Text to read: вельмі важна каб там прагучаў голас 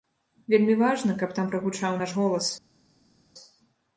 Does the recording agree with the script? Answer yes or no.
no